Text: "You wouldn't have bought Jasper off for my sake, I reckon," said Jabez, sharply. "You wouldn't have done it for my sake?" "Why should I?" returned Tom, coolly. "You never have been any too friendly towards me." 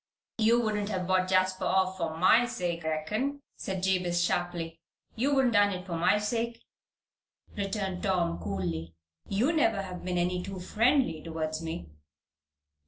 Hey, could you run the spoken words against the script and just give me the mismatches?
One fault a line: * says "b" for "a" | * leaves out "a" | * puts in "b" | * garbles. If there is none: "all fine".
* leaves out "I"
* leaves out "have"
* leaves out "Why should I"